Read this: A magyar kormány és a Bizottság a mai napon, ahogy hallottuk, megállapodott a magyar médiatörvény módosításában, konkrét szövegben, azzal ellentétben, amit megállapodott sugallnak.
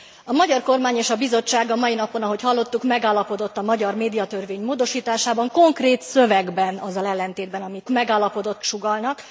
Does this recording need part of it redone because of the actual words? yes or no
no